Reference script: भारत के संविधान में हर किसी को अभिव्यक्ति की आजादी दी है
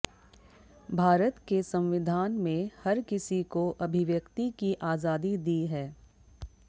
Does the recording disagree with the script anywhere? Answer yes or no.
no